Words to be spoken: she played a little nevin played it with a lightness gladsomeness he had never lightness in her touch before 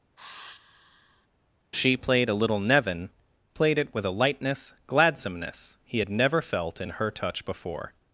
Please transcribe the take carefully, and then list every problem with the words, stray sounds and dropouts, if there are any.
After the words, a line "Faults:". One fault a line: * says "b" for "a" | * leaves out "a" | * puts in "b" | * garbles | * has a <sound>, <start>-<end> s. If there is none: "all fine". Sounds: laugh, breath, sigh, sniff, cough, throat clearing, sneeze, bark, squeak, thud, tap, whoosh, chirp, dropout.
she played a little nevin played it with a lightness gladsomeness he had never felt in her touch before
Faults:
* has a sigh, 0.2-1.3 s
* says "felt" for "lightness"